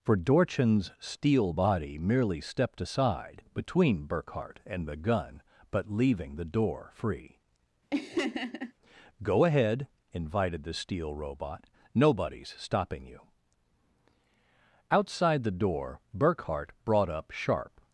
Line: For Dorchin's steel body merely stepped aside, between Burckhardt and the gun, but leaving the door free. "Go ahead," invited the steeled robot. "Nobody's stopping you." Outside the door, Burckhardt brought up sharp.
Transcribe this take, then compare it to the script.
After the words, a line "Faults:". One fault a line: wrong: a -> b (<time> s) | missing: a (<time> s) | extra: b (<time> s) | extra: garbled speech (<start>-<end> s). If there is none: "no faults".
For Dorchin's steel body merely stepped aside, between Burckhardt and the gun, but leaving the door free. "Go ahead," invited the steel robot. "Nobody's stopping you." Outside the door, Burckhardt brought up sharp.
Faults:
wrong: steeled -> steel (10.7 s)